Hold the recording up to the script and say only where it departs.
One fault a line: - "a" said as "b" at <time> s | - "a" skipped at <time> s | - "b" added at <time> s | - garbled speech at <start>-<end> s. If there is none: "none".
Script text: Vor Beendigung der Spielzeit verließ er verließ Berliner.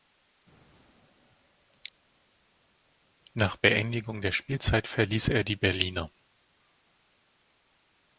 - "Vor" said as "Nach" at 3.3 s
- "verließ" said as "die" at 5.4 s